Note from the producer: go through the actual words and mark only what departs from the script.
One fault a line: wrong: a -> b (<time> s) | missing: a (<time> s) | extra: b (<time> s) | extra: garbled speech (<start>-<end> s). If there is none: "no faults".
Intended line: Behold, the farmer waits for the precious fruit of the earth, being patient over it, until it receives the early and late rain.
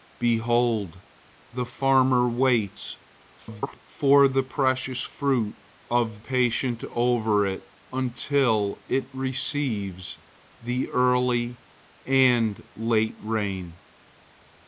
extra: garbled speech (3.4-3.8 s)
missing: the earth being (6.2 s)